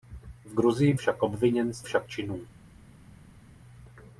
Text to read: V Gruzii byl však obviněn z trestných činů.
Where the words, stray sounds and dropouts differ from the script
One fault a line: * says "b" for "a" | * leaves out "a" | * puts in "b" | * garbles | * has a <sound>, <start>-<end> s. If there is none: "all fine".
* leaves out "byl"
* says "však" for "trestných"